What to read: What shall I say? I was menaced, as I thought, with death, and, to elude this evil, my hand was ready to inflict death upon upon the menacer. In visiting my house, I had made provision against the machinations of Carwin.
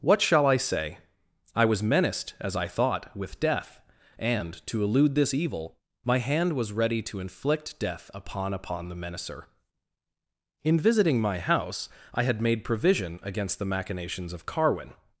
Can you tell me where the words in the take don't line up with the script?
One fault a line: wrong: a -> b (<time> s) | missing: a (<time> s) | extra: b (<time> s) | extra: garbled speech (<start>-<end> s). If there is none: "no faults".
no faults